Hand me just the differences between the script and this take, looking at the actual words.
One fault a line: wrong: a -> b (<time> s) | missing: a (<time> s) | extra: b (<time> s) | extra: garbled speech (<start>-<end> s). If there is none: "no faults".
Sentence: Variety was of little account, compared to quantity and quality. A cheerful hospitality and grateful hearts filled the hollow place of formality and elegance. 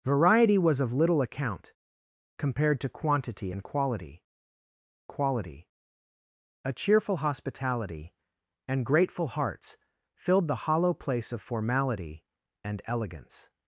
extra: quality (5.1 s)